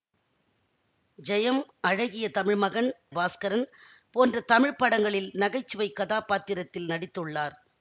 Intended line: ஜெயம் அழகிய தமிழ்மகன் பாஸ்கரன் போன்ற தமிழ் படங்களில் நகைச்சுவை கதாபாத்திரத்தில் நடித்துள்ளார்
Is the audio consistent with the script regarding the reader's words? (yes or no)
yes